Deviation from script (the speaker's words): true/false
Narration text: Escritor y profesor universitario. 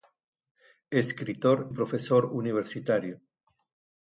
true